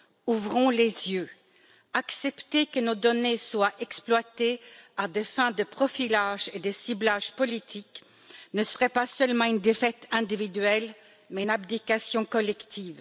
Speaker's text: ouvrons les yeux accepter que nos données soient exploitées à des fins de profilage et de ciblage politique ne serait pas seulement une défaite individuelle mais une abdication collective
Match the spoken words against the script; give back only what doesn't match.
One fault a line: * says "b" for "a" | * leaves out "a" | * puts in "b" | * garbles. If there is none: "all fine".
all fine